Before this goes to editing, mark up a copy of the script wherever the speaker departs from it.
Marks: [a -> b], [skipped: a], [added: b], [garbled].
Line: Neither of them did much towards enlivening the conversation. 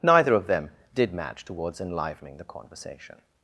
Neither of them did [much -> match] towards enlivening the conversation.